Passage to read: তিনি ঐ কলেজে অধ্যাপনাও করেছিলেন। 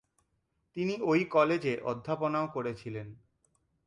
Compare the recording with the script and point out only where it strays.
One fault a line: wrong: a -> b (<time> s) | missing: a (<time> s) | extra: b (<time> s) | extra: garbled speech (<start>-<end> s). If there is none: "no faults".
no faults